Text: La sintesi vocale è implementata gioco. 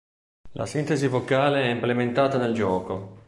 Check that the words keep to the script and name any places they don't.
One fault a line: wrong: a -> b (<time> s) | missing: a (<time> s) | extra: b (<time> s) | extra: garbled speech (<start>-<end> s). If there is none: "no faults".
extra: nel (2.4 s)